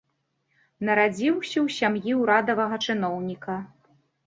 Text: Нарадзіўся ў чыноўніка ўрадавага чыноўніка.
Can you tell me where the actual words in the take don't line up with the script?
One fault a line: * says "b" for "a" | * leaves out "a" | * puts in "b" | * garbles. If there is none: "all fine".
* says "сям'і" for "чыноўніка"